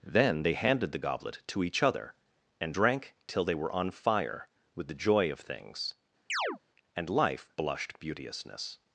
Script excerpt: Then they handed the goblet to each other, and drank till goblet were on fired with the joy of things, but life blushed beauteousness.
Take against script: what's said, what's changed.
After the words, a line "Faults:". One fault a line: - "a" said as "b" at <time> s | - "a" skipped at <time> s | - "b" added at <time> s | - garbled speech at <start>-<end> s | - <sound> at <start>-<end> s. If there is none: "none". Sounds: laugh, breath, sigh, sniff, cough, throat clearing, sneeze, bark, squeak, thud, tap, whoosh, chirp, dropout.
Then they handed the goblet to each other, and drank till they were on fire with the joy of things, and life blushed beauteousness.
Faults:
- "goblet" said as "they" at 3.4 s
- "fired" said as "fire" at 3.9 s
- chirp at 6.3-6.6 s
- "but" said as "and" at 6.9 s